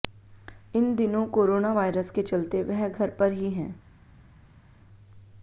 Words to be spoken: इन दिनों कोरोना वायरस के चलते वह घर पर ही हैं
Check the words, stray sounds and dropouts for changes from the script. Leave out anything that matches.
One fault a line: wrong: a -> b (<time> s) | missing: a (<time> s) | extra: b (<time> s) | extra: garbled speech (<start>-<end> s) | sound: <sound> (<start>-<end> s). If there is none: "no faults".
no faults